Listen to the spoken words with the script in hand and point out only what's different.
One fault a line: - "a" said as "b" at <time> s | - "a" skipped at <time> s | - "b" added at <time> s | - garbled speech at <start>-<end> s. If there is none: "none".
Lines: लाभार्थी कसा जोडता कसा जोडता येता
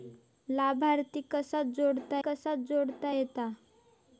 none